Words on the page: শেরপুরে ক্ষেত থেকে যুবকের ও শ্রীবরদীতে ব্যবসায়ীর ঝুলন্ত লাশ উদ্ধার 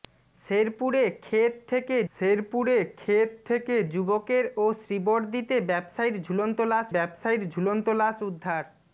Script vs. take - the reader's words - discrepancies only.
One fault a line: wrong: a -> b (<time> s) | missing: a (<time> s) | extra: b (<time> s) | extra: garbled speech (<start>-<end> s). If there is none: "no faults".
extra: শেরপুরে ক্ষেত থেকে (2.2 s)
extra: ব্যবসায়ীর ঝুলন্ত লাশ (6.9 s)